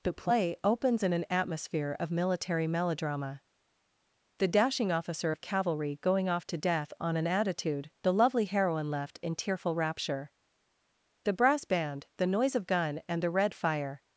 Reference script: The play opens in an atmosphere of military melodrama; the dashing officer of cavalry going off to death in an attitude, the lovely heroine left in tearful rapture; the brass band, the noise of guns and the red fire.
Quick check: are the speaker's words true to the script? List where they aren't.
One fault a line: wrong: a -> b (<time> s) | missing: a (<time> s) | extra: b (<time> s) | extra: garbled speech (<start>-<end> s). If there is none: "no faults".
wrong: in -> on (7.0 s)
wrong: guns -> gun (12.7 s)